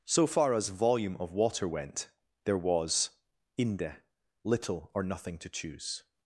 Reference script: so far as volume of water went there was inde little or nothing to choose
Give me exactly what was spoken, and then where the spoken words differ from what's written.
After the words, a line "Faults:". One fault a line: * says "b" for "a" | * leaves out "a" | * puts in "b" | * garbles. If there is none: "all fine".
so far as volume of water went there was inde little or nothing to choose
Faults:
all fine